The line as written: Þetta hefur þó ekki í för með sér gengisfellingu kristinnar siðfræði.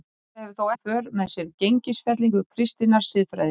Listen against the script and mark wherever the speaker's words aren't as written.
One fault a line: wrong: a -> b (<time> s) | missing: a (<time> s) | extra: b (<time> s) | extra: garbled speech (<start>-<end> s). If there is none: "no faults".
missing: ekki (0.7 s)